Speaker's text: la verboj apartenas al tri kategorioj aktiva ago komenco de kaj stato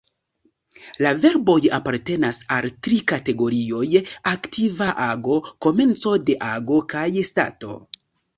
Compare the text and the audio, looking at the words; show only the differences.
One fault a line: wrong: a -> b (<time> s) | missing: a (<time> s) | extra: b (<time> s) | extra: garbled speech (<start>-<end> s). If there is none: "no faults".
extra: ago (6.5 s)